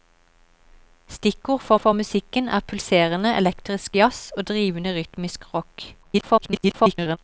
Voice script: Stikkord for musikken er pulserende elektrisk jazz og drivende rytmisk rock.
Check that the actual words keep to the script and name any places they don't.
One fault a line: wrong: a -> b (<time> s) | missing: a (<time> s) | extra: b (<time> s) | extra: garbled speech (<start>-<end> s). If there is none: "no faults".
extra: for (1.8 s)
extra: garbled speech (6.0-7.2 s)